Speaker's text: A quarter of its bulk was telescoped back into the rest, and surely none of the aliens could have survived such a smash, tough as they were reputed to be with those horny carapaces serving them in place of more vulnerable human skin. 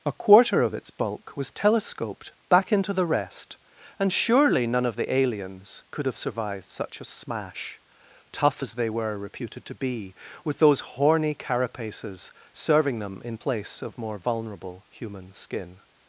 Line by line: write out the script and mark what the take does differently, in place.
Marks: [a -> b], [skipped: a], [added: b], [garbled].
A quarter of its bulk was telescoped back into the rest, and surely none of the aliens could have survived such a smash, tough as they were reputed to be with those horny carapaces serving them in place of more vulnerable human skin.